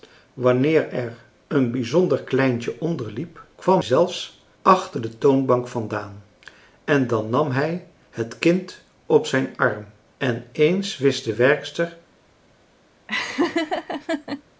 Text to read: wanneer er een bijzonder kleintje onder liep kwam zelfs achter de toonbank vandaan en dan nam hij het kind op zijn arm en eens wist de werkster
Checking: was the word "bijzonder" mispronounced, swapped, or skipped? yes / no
no